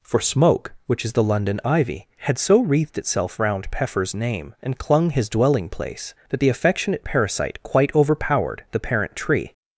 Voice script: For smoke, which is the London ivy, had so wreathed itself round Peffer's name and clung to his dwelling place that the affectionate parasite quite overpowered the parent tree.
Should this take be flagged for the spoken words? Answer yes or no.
yes